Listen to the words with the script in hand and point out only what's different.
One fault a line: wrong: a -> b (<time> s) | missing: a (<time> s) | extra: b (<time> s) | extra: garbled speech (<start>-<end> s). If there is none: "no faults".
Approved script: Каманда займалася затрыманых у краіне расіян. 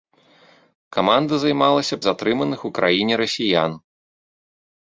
no faults